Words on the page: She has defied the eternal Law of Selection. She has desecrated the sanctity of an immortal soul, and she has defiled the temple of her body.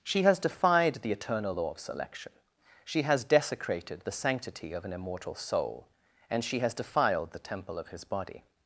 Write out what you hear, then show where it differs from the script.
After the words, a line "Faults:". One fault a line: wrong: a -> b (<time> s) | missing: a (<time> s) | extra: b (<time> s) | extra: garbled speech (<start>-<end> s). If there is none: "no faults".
She has defied the eternal Law of Selection. She has desecrated the sanctity of an immortal soul, and she has defiled the temple of his body.
Faults:
wrong: her -> his (7.9 s)